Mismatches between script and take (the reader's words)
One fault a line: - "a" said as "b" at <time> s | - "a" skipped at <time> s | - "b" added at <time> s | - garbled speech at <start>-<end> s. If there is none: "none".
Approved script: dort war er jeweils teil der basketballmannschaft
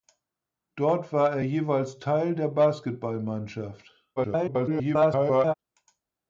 - garbled speech at 4.2-5.5 s